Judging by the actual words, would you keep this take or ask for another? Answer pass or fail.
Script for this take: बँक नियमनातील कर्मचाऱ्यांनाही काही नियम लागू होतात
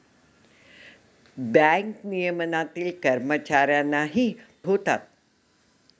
fail